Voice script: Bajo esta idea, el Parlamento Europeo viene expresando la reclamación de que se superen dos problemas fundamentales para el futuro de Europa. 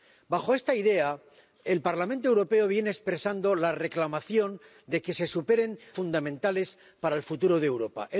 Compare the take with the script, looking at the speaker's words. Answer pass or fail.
fail